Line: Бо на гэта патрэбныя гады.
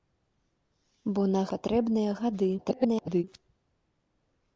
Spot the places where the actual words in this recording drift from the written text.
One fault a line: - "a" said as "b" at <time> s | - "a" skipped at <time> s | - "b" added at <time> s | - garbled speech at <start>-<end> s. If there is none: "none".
- "гэта" skipped at 1.4 s
- garbled speech at 2.6-3.2 s